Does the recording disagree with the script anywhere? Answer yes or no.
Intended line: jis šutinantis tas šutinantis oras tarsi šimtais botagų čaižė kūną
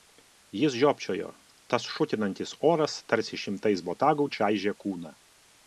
yes